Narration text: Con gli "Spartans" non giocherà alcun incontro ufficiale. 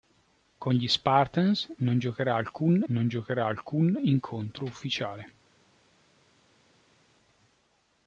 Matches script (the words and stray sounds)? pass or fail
fail